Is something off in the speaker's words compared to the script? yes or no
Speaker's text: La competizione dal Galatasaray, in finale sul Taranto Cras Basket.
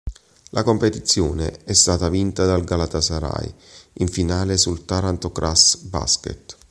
yes